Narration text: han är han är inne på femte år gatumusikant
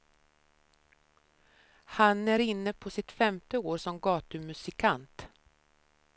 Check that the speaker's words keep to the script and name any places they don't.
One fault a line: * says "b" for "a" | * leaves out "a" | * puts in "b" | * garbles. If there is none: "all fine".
* leaves out "han är"
* puts in "sitt"
* puts in "som"